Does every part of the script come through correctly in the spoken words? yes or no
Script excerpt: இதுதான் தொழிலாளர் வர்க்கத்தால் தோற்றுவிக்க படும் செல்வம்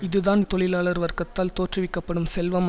yes